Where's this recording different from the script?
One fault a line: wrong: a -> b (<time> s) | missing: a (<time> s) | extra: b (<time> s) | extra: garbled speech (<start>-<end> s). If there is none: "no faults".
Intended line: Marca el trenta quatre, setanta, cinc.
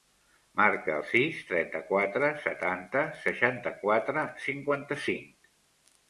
extra: sis (1.1 s)
extra: seixanta quatre cinquanta (3.2 s)